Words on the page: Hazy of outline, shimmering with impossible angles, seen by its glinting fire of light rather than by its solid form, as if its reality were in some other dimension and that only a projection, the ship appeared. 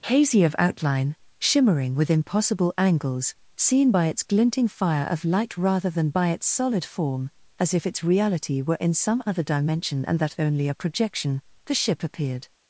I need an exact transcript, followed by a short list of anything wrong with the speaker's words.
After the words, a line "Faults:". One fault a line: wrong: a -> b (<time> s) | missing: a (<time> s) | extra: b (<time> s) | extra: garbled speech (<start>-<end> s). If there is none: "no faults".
Hazy of outline, shimmering with impossible angles, seen by its glinting fire of light rather than by its solid form, as if its reality were in some other dimension and that only a projection, the ship appeared.
Faults:
no faults